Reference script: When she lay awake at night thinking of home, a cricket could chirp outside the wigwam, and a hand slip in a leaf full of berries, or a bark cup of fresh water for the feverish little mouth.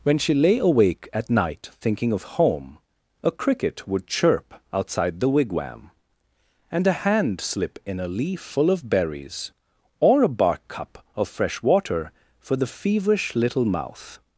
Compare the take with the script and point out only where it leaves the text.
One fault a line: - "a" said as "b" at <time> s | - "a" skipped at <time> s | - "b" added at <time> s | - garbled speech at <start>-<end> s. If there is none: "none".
- "could" said as "would" at 3.9 s